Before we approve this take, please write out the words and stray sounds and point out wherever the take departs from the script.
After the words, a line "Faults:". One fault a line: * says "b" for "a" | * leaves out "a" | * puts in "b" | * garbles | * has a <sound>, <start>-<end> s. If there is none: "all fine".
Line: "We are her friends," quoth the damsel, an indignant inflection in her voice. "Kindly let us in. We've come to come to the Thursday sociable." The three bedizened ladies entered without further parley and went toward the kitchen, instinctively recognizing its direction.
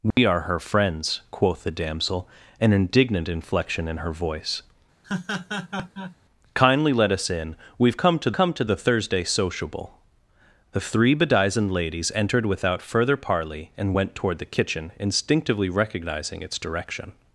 "We are her friends," quoth the damsel, an indignant inflection in her voice. "Kindly let us in. We've come to come to the Thursday sociable." The three bedizened ladies entered without further parley and went toward the kitchen, instinctively recognizing its direction.
Faults:
* has a dropout, 0.1-0.2 s
* has a laugh, 5.0-6.2 s